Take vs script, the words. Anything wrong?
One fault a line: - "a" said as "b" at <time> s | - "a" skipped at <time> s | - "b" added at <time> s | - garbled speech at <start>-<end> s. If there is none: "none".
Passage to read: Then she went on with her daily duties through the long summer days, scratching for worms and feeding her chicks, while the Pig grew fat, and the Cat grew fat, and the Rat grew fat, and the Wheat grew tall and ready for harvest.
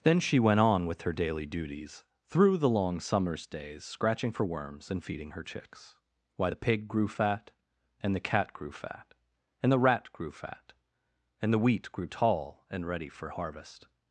- "summer" said as "summers" at 3.0 s
- "while" said as "why" at 6.4 s